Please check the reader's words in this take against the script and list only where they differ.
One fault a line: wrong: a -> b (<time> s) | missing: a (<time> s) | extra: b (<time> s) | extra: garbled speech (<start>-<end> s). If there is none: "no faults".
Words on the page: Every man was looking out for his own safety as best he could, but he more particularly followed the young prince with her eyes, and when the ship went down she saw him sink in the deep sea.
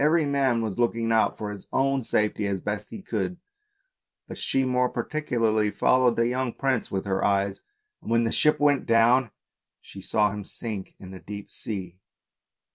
wrong: he -> she (4.4 s)